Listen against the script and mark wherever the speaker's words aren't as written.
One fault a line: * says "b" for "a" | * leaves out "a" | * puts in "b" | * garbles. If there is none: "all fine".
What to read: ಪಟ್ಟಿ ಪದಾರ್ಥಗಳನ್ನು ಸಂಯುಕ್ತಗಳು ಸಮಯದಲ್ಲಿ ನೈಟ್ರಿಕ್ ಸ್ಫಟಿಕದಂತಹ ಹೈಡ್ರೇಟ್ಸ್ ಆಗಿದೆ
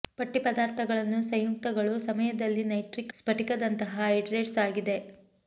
all fine